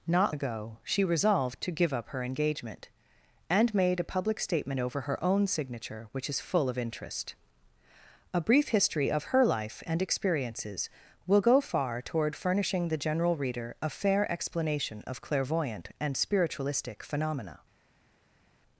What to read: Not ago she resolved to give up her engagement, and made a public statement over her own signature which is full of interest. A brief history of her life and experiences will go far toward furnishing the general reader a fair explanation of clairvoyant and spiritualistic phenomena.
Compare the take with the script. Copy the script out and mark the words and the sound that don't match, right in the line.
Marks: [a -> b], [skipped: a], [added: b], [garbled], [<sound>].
Not ago she resolved to give up her engagement, and made a public statement over her own signature which is full of interest. A brief history of her life and experiences will go far toward furnishing the general reader a fair explanation of clairvoyant and spiritualistic phenomena.